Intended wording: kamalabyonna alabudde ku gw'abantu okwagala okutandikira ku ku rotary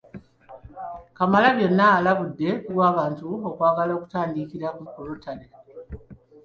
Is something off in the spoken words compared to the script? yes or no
no